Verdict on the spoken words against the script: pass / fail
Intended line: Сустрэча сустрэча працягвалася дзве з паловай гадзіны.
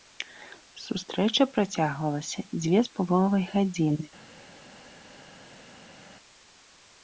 fail